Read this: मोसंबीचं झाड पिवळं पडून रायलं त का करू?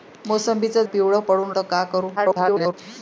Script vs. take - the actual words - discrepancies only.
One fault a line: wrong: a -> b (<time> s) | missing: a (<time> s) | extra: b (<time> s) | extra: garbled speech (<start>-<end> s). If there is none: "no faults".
missing: झाड (0.8 s)
missing: रायलं (1.5 s)
extra: garbled speech (2.2-2.7 s)